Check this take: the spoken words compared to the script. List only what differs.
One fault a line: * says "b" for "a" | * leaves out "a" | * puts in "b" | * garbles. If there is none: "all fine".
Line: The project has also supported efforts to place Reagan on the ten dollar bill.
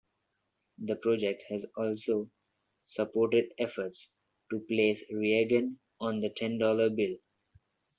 all fine